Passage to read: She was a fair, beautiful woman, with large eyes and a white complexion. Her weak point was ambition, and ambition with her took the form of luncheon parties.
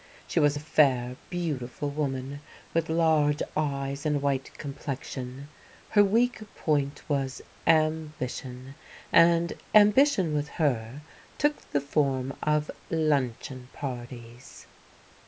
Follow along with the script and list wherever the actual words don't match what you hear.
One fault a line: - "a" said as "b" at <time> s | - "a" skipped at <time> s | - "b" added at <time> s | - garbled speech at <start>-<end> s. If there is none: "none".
none